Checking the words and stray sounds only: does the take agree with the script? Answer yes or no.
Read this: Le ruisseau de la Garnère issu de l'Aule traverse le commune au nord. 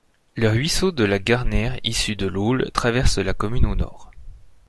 no